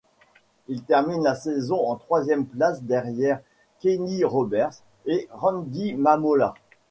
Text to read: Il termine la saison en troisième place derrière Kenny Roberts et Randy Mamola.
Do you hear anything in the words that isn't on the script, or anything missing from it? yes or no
no